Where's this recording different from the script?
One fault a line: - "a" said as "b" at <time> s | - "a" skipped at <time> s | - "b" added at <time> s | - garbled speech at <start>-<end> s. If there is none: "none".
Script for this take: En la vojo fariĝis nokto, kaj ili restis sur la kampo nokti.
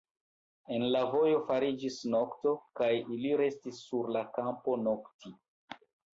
none